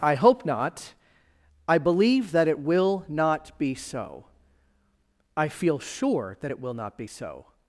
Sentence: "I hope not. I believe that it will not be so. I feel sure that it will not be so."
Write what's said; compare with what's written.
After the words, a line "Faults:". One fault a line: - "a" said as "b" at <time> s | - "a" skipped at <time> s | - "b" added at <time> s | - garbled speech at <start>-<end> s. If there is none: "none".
"I hope not. I believe that it will not be so. I feel sure that it will not be so."
Faults:
none